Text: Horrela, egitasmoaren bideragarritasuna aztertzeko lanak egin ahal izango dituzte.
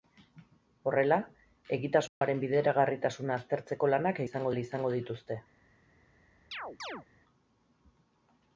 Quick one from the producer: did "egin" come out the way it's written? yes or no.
no